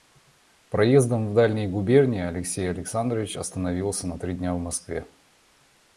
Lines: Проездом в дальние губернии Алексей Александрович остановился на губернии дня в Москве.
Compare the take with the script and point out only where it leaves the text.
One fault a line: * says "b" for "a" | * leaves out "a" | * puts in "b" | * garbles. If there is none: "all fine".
* says "три" for "губернии"